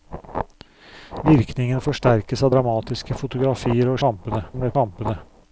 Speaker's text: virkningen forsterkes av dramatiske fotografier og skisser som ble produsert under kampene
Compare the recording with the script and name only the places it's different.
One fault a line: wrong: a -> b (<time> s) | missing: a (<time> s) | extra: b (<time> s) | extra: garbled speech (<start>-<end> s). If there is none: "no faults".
wrong: skisser -> kampene (4.1 s)
missing: produsert under (4.7 s)